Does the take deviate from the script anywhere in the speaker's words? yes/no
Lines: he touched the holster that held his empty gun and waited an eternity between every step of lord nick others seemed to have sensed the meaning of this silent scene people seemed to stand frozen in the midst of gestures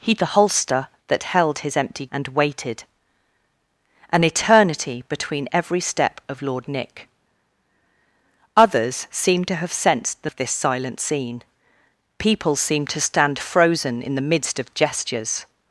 yes